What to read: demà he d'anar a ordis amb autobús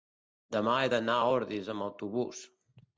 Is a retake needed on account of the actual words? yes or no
no